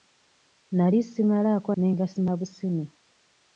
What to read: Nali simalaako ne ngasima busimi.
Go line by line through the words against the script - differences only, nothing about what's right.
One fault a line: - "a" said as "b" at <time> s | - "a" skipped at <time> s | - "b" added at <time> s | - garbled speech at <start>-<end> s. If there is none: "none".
none